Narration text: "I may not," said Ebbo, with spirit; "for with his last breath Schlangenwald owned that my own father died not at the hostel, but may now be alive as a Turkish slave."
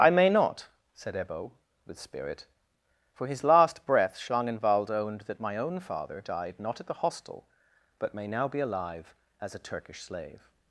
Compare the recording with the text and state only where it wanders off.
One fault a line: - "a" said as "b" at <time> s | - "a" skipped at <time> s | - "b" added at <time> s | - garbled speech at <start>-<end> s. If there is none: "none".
- "with" skipped at 3.3 s